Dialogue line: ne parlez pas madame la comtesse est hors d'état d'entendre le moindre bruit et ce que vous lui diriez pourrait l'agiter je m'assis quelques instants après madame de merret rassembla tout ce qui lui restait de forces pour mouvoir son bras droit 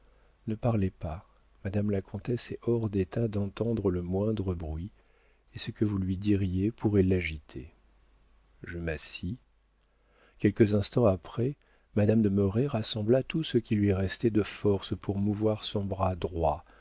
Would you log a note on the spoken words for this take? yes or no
no